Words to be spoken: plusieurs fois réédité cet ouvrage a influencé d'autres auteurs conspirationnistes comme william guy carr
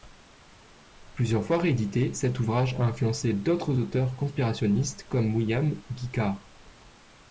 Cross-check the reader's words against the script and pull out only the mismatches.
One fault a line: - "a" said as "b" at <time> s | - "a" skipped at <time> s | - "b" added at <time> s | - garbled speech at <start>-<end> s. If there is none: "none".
none